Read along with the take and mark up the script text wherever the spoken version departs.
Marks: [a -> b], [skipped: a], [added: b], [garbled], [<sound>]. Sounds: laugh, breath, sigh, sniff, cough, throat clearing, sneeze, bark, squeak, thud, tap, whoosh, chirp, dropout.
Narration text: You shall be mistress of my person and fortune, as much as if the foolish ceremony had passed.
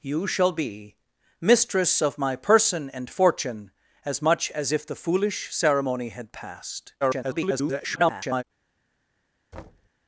You shall be mistress of my person and fortune, as much as if the foolish ceremony had passed. [garbled] [thud]